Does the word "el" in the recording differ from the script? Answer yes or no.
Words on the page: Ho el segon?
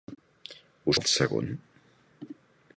no